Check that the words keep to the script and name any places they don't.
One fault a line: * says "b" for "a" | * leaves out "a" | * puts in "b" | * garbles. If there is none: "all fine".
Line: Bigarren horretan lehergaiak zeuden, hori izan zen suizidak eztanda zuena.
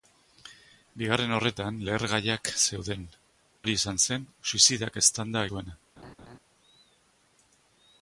all fine